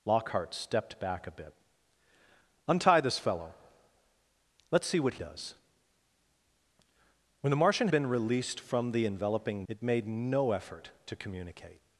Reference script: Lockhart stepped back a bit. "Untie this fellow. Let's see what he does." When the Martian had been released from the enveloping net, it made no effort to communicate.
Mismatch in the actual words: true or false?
true